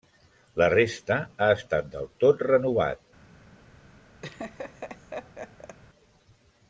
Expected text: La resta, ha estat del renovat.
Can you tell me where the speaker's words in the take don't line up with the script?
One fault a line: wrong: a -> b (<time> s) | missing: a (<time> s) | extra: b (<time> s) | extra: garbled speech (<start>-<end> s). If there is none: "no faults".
extra: tot (2.2 s)